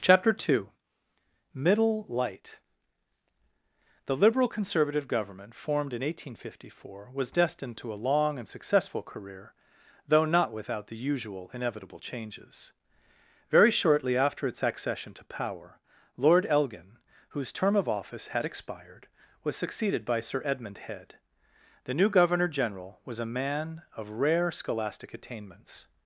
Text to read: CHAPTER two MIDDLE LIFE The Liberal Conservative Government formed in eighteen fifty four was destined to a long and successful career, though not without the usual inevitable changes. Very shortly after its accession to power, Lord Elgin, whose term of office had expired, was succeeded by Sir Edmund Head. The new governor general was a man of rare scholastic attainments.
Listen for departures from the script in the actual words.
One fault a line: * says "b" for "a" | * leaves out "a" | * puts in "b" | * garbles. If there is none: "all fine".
* says "Light" for "LIFE"